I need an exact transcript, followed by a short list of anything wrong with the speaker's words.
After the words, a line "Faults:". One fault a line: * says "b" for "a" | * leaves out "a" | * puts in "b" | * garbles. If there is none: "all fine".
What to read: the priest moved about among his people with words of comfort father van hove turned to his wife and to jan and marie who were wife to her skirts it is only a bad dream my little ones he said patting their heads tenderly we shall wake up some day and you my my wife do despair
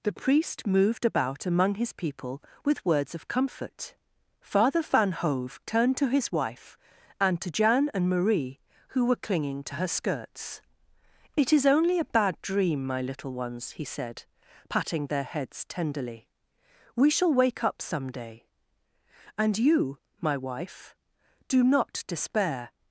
the priest moved about among his people with words of comfort father van hove turned to his wife and to jan and marie who were clinging to her skirts it is only a bad dream my little ones he said patting their heads tenderly we shall wake up some day and you my wife do not despair
Faults:
* says "clinging" for "wife"
* leaves out "my"
* puts in "not"